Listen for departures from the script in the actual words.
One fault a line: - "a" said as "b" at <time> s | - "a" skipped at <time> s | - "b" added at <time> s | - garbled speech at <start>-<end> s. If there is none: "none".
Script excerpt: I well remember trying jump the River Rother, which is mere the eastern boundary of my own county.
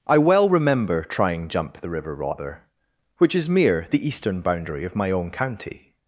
none